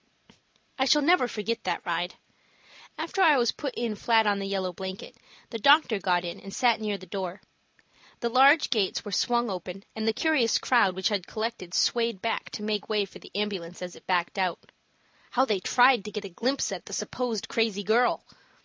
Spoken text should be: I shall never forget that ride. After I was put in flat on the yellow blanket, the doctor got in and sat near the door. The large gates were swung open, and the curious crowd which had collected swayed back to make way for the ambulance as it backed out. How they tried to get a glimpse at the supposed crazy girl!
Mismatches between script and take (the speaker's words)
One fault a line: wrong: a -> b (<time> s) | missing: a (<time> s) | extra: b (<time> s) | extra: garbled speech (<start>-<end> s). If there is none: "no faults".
no faults